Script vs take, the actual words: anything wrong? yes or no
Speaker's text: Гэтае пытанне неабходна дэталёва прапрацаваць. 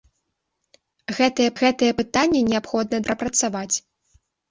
yes